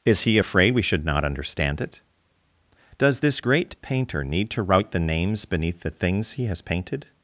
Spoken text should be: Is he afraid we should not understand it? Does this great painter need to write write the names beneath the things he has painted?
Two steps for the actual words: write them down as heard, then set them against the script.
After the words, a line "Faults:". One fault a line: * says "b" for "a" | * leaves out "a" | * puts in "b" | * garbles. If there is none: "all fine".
Is he afraid we should not understand it? Does this great painter need to write the names beneath the things he has painted?
Faults:
* leaves out "write"